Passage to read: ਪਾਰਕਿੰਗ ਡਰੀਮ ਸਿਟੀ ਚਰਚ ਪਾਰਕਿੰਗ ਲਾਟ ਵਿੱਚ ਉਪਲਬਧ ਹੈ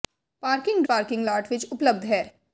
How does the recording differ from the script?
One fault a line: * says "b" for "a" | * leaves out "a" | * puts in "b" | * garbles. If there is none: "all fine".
* leaves out "ਡਰੀਮ ਸਿਟੀ ਚਰਚ"